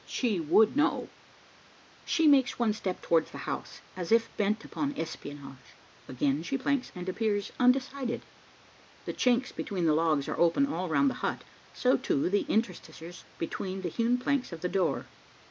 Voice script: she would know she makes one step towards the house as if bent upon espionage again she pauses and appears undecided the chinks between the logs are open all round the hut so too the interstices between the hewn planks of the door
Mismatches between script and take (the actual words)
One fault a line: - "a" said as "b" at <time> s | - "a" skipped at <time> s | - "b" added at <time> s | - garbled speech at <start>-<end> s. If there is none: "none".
- "pauses" said as "planks" at 6.6 s